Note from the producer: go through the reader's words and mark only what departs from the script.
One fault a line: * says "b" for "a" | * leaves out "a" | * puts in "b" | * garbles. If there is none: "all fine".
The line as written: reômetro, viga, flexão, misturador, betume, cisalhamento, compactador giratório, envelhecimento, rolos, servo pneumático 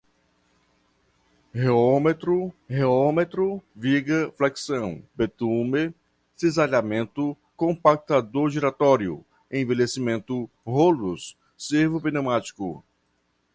* puts in "reômetro"
* leaves out "misturador"